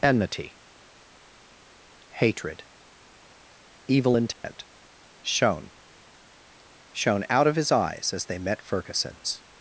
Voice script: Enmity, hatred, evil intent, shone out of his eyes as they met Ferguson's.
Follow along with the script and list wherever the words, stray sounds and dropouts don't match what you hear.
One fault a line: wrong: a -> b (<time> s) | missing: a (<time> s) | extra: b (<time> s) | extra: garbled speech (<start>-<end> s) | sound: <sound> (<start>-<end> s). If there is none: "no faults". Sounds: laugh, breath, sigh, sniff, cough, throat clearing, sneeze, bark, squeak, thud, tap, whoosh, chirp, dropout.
sound: dropout (4.3-4.4 s)
extra: shone (6.9 s)